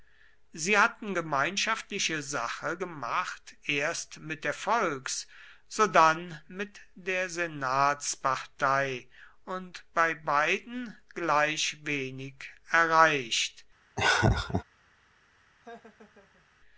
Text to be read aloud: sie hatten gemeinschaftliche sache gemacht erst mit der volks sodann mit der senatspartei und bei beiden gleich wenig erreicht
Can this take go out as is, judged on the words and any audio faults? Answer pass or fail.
fail